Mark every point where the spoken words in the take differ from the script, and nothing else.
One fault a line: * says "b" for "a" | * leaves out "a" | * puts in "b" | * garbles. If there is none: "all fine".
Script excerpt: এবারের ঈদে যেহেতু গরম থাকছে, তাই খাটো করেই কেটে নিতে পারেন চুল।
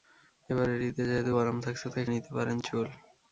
* leaves out "খাটো করেই কেটে"